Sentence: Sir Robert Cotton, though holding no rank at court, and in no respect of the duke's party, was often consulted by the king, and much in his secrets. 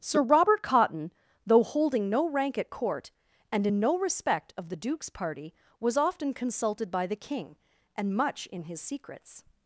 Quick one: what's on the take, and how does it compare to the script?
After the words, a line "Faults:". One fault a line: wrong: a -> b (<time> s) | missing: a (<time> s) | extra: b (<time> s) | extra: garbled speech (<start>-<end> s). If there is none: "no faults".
Sir Robert Cotton, though holding no rank at court, and in no respect of the duke's party, was often consulted by the king, and much in his secrets.
Faults:
no faults